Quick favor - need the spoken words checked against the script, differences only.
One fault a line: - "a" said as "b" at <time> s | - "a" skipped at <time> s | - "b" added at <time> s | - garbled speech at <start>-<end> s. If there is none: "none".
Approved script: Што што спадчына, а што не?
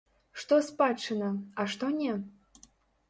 - "што" skipped at 0.6 s